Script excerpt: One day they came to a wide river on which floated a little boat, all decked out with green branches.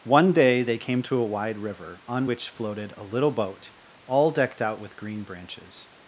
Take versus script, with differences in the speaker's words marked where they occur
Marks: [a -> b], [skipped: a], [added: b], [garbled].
One day they came to a wide river on which floated a little boat, all decked out with green branches.